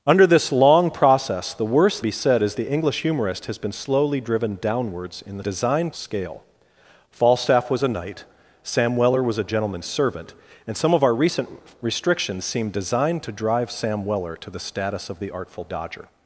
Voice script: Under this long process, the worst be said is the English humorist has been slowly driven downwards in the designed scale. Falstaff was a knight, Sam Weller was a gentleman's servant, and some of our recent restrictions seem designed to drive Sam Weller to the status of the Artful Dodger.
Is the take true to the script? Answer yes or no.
yes